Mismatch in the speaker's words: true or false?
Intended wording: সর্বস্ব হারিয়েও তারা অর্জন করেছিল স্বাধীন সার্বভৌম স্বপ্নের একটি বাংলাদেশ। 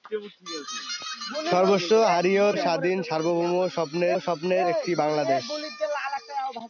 true